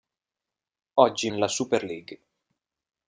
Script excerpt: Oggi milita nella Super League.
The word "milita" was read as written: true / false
false